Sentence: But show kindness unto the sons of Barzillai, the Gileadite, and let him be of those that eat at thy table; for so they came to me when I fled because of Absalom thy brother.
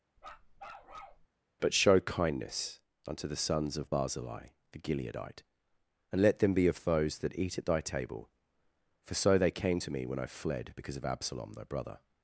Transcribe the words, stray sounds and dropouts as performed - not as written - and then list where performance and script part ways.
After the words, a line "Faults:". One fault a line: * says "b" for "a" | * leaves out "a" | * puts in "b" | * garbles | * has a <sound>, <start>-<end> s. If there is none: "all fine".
But show kindness unto the sons of Barzillai, the Gileadite, and let them be of those that eat at thy table; for so they came to me when I fled because of Absalom thy brother.
Faults:
* has a bark, 0.2-1.3 s
* says "them" for "him"